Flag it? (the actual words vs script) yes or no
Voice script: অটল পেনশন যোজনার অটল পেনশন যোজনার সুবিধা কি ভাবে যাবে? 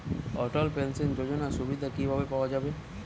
yes